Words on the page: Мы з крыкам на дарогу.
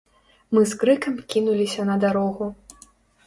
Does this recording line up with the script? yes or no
no